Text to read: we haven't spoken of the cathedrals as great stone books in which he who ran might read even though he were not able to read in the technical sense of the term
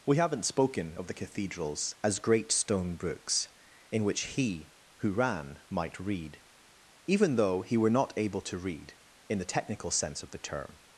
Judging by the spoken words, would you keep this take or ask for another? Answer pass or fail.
pass